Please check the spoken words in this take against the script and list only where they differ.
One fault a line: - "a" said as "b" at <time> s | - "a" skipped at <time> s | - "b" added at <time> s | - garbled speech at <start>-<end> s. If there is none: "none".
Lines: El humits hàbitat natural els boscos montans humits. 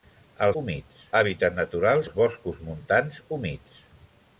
none